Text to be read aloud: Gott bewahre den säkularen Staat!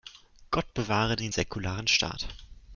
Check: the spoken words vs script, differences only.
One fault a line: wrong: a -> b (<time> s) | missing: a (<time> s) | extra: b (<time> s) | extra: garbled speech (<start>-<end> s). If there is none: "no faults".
no faults